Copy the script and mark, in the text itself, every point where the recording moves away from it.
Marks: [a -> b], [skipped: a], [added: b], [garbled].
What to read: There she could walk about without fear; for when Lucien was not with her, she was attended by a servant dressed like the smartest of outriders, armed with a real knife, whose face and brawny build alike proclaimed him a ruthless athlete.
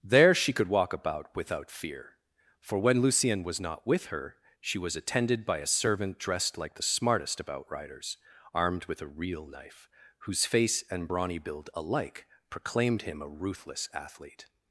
There she could walk about without fear; for when Lucien was not with her, she was attended by a servant dressed like the smartest of outriders, armed with a real knife, whose face and brawny build alike proclaimed him a ruthless athlete.